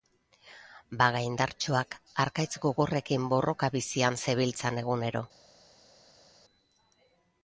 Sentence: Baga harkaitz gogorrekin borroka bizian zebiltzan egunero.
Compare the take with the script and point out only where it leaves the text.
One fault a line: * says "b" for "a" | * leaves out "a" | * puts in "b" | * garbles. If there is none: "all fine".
* puts in "indartsuak"